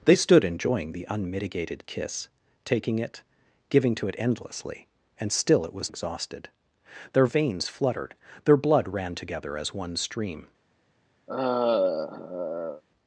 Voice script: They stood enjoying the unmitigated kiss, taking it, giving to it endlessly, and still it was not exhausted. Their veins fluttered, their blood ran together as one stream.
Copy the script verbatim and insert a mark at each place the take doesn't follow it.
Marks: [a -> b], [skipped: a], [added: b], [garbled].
They stood enjoying the unmitigated kiss, taking it, giving to it endlessly, and still it was [skipped: not] exhausted. Their veins fluttered, their blood ran together as one stream.